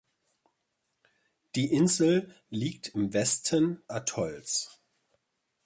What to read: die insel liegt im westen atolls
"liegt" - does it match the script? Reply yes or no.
yes